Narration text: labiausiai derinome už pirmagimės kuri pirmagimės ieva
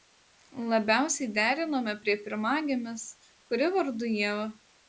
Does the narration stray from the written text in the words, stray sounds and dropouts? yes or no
yes